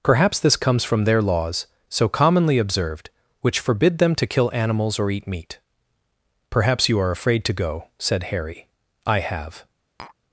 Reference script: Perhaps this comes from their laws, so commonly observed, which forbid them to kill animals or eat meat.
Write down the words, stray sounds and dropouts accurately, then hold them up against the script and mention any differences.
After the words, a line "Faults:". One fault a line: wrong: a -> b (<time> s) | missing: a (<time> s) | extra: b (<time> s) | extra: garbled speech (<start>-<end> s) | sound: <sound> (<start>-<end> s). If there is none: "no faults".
Perhaps this comes from their laws, so commonly observed, which forbid them to kill animals or eat meat. "Perhaps you are afraid to go," said Harry. "I have
Faults:
extra: Perhaps you are afraid to go said Harry I have (6.5 s)
sound: tap (10.0-10.2 s)